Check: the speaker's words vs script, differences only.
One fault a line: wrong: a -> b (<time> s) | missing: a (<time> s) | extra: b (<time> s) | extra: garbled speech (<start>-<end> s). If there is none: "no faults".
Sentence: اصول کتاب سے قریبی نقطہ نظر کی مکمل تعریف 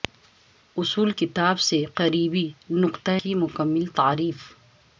missing: نظر (3.1 s)